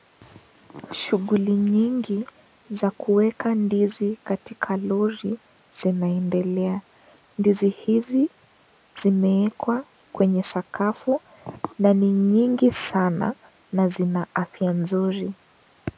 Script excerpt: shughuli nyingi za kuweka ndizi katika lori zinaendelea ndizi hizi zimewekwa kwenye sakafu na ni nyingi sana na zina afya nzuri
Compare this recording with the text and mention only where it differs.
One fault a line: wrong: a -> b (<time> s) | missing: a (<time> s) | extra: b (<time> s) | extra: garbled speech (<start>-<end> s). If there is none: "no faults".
no faults